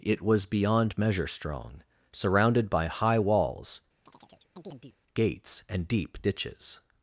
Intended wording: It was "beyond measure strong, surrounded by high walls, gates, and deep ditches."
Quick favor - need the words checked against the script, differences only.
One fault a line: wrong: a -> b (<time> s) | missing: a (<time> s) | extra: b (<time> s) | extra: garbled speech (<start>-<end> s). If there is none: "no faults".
no faults